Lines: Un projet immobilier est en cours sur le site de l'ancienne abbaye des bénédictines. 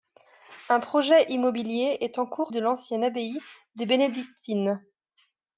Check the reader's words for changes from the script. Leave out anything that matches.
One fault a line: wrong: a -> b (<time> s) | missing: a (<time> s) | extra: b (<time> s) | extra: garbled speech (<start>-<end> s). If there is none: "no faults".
missing: sur le site (2.5 s)